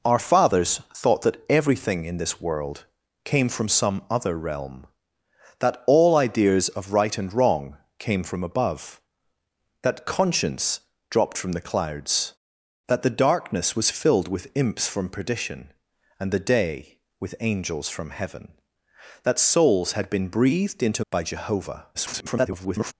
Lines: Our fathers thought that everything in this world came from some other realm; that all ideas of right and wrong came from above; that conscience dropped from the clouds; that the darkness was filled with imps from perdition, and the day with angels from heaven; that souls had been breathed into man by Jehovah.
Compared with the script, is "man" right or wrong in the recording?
wrong